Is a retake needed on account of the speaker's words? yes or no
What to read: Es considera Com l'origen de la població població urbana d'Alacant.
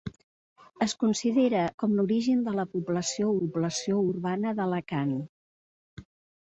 no